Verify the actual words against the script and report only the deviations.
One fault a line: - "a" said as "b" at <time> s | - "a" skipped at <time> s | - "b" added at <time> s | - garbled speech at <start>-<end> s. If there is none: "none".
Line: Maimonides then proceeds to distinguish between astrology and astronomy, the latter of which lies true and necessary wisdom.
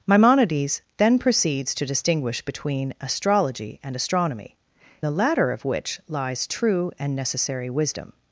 none